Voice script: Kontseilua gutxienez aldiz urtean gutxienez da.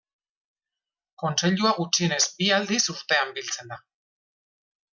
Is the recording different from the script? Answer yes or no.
yes